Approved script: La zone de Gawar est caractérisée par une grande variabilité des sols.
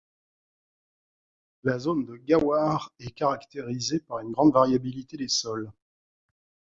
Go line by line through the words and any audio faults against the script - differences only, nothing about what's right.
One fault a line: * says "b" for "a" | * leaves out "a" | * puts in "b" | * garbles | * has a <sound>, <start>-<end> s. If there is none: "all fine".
all fine